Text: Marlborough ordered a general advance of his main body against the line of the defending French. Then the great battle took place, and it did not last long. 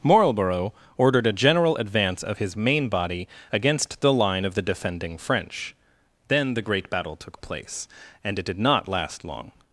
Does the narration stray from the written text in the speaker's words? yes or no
no